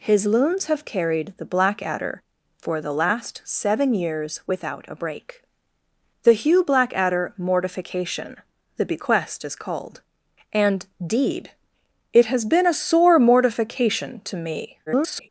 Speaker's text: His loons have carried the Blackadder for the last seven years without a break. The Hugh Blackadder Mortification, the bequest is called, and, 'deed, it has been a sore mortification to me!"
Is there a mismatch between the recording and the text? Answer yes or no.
yes